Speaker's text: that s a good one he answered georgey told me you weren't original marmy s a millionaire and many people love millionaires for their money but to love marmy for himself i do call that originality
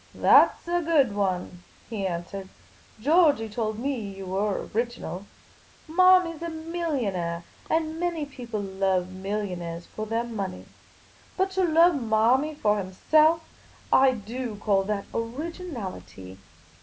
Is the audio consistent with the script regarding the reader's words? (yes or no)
no